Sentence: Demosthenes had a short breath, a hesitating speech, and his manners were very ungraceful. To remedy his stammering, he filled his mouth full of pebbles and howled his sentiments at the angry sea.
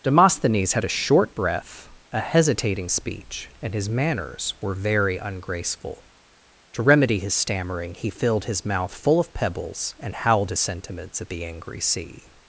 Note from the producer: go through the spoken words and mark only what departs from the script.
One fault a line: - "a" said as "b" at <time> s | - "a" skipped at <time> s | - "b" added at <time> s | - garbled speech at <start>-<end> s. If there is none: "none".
none